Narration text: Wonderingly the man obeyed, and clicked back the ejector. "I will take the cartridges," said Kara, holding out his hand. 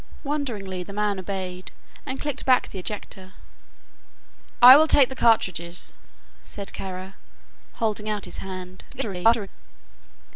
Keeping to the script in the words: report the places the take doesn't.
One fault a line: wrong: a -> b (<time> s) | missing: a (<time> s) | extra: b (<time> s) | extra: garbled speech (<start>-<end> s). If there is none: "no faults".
extra: garbled speech (8.9-9.5 s)